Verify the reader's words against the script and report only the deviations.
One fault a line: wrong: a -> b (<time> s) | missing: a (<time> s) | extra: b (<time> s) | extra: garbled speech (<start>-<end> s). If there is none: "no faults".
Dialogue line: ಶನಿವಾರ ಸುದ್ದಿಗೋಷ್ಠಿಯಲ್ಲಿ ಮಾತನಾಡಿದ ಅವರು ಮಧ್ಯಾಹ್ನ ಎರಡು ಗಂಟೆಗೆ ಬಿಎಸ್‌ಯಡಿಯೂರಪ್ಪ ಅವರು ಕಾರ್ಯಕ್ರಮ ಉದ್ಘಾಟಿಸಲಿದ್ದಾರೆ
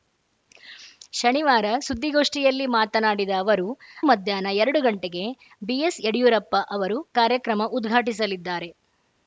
no faults